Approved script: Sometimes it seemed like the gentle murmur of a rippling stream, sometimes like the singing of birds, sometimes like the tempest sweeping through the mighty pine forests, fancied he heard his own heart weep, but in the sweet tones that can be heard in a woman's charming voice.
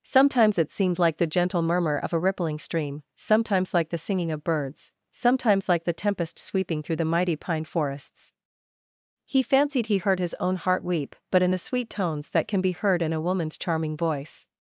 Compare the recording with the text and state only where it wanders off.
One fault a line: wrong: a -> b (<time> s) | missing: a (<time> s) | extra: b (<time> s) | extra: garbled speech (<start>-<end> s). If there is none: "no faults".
extra: he (9.2 s)